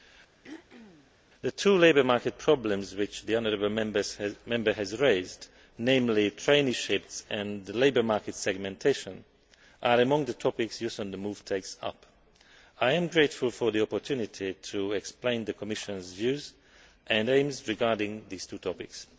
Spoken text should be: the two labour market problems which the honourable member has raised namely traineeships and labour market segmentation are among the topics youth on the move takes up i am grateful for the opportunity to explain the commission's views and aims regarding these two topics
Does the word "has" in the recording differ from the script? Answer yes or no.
no